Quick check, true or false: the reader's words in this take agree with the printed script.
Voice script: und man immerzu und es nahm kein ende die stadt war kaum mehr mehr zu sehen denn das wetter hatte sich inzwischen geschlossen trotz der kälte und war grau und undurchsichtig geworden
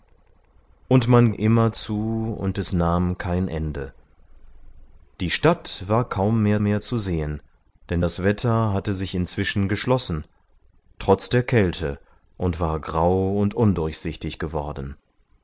true